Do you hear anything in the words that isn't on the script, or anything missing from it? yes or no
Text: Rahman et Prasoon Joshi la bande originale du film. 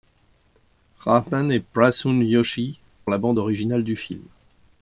no